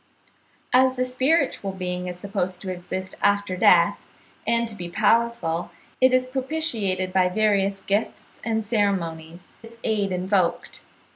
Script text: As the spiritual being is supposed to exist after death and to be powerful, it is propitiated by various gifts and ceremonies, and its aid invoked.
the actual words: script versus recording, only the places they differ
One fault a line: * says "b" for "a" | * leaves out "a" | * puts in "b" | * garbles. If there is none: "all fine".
* leaves out "and"